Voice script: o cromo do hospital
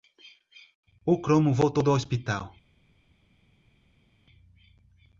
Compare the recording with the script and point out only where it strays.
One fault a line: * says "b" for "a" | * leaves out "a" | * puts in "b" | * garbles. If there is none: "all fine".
* puts in "voltou"